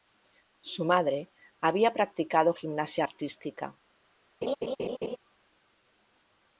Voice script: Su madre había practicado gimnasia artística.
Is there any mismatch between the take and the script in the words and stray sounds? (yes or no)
yes